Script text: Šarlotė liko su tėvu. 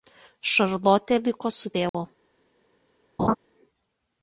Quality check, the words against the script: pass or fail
pass